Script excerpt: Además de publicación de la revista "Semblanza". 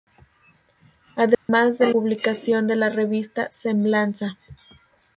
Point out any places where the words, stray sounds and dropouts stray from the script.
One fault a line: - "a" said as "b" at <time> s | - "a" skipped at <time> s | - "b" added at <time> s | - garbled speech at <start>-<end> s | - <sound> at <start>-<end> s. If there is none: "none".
- dropout at 1.3-1.5 s